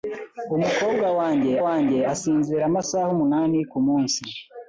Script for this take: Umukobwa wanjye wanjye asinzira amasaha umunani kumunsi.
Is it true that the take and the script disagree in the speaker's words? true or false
false